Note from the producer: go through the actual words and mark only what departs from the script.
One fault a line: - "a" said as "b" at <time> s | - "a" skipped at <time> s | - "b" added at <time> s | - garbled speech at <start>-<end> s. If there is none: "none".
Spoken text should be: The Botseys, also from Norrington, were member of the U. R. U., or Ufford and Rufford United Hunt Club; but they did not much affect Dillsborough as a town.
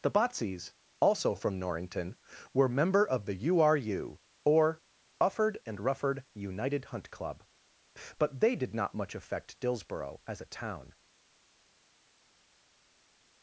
none